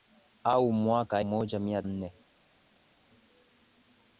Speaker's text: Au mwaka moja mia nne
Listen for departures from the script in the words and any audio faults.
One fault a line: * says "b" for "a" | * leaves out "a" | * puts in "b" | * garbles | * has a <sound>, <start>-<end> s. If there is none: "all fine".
all fine